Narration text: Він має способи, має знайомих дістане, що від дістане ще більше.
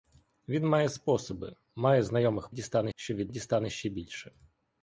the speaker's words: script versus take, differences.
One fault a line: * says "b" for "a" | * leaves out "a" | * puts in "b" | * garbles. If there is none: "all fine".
all fine